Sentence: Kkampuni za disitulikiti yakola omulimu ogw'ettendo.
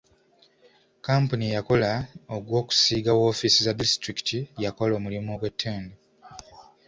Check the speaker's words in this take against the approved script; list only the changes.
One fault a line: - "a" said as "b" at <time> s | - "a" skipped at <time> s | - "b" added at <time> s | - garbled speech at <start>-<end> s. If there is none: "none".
- "eyakola ogw'okusiiga woofiisi" added at 1.5 s